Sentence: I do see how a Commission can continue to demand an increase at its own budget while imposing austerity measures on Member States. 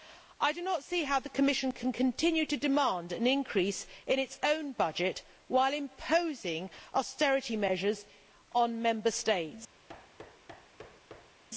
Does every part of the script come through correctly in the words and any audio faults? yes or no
no